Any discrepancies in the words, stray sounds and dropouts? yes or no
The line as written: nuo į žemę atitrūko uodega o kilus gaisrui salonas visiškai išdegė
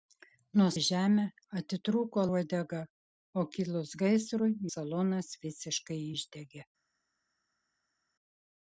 no